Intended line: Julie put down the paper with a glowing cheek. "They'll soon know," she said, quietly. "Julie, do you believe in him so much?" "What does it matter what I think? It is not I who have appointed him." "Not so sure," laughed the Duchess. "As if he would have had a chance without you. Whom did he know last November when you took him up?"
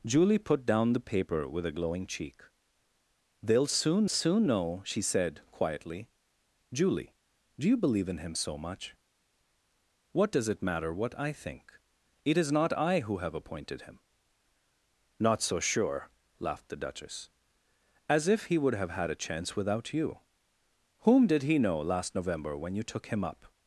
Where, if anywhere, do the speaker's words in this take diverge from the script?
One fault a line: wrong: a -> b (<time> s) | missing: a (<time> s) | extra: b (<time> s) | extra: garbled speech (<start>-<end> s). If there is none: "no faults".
extra: soon (4.1 s)